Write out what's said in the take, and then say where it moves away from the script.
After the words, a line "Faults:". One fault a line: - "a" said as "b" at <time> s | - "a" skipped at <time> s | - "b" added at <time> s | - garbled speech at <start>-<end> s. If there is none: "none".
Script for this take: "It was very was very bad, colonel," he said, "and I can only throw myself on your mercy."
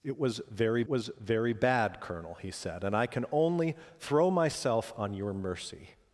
"It was very was very bad, colonel," he said, "and I can only throw myself on your mercy."
Faults:
none